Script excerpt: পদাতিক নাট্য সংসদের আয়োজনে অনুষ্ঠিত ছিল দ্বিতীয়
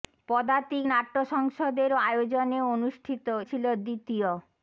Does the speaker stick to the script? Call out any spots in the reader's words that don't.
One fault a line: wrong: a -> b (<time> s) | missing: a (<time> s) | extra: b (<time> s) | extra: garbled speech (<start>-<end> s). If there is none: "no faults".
no faults